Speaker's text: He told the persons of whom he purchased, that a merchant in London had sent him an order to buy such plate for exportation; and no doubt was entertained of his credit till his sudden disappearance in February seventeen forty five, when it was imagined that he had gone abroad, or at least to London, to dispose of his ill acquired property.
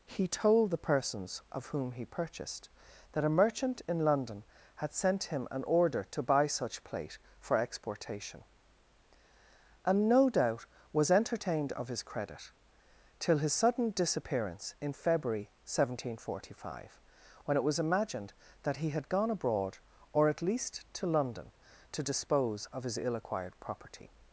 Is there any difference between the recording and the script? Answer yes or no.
no